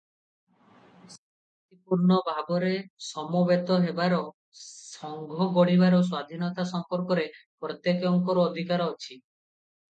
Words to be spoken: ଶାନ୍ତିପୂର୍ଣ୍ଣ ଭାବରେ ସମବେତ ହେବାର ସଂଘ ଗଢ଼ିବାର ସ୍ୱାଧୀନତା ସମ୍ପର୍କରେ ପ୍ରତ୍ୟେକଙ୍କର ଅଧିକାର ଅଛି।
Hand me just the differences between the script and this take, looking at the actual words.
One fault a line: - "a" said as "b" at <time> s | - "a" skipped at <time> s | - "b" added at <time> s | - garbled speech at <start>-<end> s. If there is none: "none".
none